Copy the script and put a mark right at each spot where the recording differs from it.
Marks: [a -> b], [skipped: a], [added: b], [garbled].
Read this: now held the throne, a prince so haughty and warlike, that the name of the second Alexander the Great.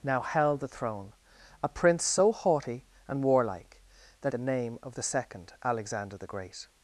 now held the throne, a prince so haughty and warlike, that the name of the second Alexander the Great.